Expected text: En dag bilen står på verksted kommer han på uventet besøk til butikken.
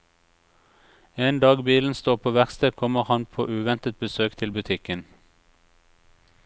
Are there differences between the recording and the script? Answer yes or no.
no